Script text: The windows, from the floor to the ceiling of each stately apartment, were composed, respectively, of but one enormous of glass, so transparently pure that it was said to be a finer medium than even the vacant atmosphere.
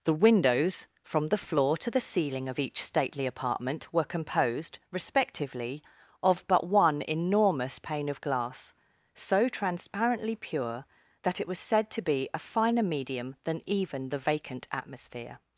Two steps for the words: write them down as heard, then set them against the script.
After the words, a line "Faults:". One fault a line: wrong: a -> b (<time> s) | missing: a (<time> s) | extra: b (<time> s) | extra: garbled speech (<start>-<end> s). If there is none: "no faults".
The windows, from the floor to the ceiling of each stately apartment, were composed, respectively, of but one enormous pane of glass, so transparently pure that it was said to be a finer medium than even the vacant atmosphere.
Faults:
extra: pane (7.8 s)